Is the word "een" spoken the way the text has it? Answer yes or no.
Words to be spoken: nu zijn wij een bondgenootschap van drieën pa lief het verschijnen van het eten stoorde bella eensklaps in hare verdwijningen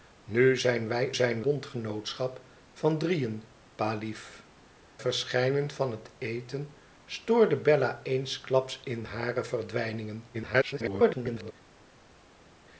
no